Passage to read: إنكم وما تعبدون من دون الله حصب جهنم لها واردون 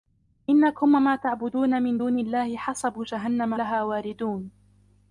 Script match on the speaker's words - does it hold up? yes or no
yes